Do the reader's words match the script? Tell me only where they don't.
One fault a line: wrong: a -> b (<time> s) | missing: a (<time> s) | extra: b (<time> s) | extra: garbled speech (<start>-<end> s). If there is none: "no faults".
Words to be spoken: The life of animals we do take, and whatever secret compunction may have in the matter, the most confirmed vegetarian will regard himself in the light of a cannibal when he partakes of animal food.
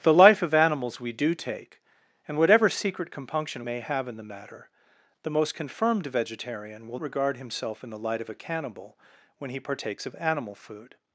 no faults